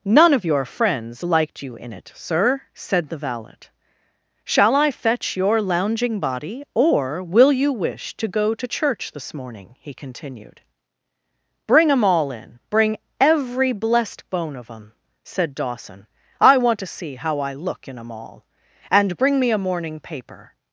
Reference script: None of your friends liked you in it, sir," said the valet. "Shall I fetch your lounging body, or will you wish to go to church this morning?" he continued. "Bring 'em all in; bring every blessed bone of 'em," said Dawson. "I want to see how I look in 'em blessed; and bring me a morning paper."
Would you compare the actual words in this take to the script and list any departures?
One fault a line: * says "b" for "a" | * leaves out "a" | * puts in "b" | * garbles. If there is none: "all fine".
* says "all" for "blessed"